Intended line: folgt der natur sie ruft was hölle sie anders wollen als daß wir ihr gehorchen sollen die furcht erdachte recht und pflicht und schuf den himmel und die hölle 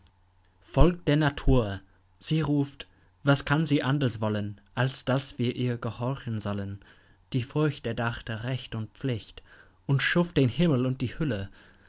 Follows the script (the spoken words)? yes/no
no